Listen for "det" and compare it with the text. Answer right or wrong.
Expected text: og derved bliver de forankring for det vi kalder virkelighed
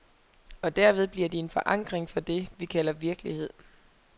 right